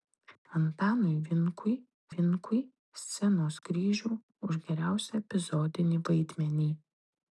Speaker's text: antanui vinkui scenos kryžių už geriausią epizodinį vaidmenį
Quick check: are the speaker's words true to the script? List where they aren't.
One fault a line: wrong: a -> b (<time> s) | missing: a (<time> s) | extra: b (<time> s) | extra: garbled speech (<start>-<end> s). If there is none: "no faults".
extra: vinkui (2.1 s)